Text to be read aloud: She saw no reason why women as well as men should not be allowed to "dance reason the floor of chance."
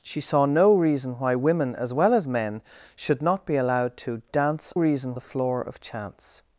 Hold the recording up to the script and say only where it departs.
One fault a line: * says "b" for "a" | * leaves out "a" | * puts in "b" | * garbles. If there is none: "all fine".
all fine